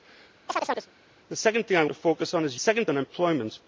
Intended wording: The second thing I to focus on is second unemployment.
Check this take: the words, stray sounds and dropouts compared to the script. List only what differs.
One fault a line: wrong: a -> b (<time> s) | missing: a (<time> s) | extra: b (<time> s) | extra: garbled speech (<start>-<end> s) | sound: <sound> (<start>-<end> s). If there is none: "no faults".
sound: chirp (0.5-0.9 s)